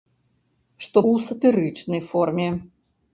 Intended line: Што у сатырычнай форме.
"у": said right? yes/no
yes